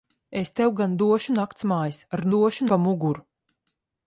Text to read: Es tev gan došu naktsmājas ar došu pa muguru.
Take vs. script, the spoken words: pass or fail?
pass